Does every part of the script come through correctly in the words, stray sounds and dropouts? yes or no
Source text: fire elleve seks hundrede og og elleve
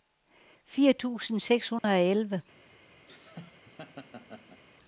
no